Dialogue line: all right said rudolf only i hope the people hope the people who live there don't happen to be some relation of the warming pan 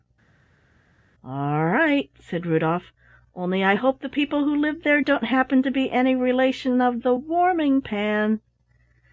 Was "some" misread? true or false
true